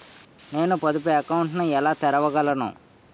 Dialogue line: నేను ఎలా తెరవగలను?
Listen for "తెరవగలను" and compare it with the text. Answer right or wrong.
right